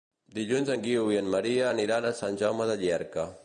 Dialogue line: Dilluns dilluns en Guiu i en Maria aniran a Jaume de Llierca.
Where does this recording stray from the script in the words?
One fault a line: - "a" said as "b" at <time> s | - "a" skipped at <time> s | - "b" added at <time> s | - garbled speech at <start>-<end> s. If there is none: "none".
- "dilluns" skipped at 0.7 s
- "Sant" added at 2.2 s